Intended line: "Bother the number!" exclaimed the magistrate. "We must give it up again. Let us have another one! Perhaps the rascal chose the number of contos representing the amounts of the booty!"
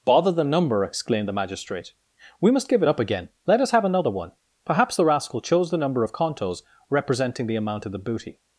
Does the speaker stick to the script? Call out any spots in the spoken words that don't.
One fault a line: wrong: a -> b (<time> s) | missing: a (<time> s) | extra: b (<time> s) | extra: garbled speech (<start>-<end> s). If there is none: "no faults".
wrong: amounts -> amount (7.5 s)